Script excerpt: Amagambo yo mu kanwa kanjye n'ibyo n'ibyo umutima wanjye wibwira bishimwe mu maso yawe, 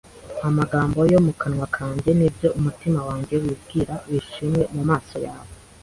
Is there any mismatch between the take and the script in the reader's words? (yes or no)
yes